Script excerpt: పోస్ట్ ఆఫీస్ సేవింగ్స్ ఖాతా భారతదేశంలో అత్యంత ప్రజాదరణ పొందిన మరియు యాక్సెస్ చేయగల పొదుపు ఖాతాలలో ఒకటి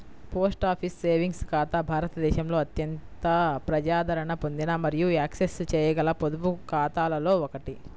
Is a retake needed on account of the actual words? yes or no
no